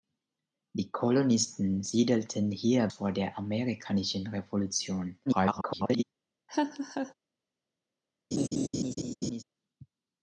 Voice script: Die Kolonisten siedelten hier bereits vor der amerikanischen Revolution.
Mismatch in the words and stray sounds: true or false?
true